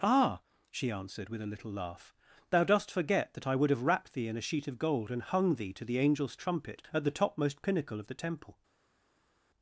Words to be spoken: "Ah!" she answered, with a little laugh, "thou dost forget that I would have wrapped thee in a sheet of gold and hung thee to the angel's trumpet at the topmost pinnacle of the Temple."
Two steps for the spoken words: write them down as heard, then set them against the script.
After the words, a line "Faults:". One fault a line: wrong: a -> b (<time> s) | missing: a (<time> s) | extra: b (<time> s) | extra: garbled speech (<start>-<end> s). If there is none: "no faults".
"Ah!" she answered, with a little laugh, "thou dost forget that I would have wrapped thee in a sheet of gold and hung thee to the angel's trumpet at the topmost pinnacle of the Temple."
Faults:
no faults